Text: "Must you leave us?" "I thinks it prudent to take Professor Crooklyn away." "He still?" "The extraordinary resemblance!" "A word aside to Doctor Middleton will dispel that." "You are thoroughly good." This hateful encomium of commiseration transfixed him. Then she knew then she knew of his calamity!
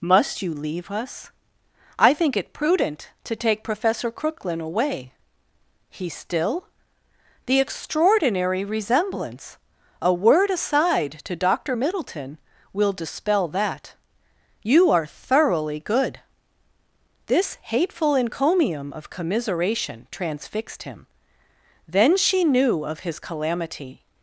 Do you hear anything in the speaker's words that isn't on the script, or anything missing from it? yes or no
yes